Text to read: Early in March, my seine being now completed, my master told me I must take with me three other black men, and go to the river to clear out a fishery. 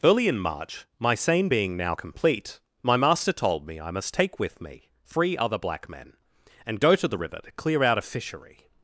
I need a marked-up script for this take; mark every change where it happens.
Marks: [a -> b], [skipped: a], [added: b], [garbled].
Early in March, my seine being now [completed, -> complete] my master told me I must take with me three other black men, and go to the river to clear out a fishery.